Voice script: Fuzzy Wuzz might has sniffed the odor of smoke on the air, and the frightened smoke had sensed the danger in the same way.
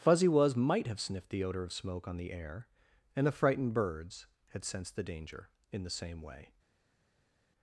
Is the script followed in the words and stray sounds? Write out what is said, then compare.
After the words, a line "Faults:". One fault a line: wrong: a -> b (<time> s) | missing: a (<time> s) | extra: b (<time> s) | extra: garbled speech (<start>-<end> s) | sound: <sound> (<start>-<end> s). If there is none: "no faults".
Fuzzy Wuzz might have sniffed the odor of smoke on the air, and the frightened birds had sensed the danger in the same way.
Faults:
wrong: has -> have (0.9 s)
wrong: smoke -> birds (3.8 s)